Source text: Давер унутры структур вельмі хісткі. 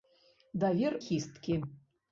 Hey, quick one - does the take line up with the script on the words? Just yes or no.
no